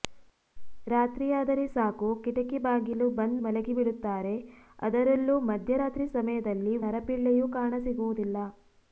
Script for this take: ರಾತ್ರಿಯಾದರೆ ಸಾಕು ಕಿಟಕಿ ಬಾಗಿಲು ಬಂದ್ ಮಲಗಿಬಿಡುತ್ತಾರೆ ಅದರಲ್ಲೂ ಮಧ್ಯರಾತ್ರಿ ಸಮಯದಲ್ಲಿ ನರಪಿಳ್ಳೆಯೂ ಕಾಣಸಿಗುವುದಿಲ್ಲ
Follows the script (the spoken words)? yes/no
yes